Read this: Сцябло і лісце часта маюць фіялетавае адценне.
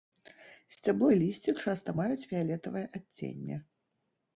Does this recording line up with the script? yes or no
yes